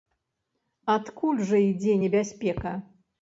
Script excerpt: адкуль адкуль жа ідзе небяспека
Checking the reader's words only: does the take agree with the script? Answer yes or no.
no